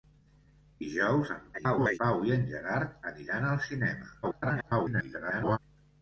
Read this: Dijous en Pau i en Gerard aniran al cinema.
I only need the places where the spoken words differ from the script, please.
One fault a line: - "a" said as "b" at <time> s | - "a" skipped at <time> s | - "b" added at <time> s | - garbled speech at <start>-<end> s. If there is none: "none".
- garbled speech at 1.5-2.0 s
- garbled speech at 4.2-5.6 s